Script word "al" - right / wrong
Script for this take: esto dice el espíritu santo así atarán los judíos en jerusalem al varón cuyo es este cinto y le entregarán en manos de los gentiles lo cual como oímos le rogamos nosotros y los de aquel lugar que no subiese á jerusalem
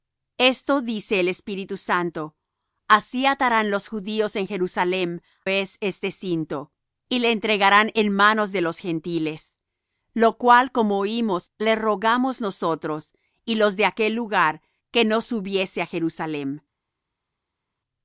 wrong